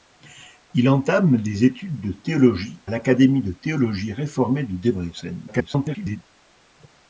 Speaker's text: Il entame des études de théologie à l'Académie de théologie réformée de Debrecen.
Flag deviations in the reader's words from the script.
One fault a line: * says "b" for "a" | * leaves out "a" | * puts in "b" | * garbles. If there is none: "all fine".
* leaves out "à"
* garbles